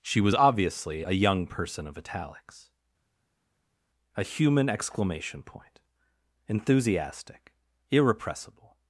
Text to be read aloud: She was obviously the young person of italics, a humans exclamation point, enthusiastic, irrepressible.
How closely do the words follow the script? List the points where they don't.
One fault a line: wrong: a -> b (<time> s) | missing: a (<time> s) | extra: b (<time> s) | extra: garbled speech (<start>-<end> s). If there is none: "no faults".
wrong: the -> a (1.0 s)
wrong: humans -> human (4.2 s)